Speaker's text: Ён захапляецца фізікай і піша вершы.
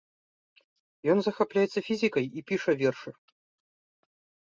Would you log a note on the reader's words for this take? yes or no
no